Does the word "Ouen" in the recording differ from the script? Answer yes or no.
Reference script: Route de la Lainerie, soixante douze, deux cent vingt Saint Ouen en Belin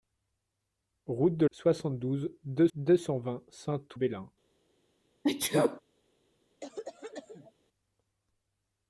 yes